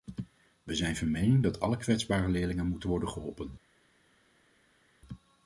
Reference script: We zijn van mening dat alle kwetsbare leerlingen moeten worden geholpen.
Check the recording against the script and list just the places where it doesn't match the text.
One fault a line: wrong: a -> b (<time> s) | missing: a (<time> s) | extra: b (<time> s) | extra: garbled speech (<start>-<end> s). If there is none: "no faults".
no faults